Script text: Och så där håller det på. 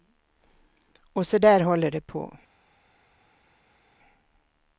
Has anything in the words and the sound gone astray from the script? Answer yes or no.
no